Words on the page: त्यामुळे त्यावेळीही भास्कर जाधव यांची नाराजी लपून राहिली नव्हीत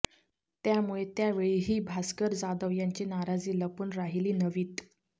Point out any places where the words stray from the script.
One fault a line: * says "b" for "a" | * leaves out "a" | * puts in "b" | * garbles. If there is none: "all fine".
all fine